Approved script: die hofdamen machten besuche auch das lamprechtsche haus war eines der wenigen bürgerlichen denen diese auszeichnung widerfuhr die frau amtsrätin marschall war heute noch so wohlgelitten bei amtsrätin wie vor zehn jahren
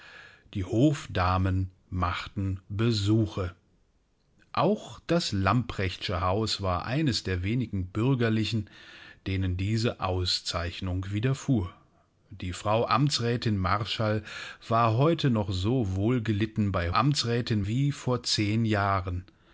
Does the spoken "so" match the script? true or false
true